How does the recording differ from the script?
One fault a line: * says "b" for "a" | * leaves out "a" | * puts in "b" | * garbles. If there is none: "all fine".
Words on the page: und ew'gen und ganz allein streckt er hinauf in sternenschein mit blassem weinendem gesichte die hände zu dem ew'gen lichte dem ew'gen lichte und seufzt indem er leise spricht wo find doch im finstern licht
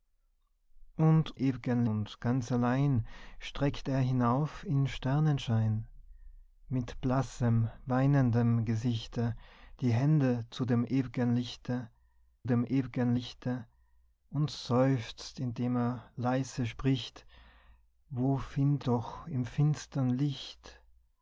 all fine